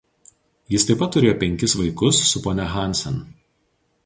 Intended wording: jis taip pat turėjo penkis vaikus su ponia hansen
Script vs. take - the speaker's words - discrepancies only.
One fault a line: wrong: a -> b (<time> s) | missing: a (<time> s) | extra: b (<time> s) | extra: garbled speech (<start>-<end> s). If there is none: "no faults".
no faults